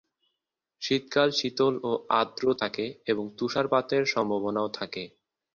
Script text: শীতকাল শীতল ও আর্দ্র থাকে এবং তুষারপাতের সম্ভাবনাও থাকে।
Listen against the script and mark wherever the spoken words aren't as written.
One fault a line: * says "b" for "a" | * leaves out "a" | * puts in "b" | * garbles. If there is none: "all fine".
all fine